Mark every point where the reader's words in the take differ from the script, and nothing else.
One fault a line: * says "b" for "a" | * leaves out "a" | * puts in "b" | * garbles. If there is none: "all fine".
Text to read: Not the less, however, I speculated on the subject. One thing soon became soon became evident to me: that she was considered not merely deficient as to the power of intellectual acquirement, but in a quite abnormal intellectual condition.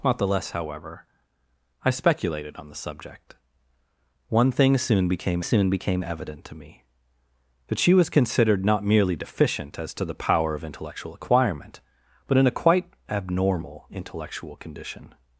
all fine